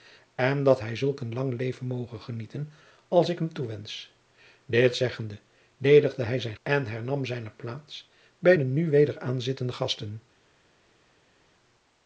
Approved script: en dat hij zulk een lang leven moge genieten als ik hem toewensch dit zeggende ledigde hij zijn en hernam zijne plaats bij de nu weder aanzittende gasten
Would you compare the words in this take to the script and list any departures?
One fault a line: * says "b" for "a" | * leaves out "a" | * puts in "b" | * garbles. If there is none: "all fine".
all fine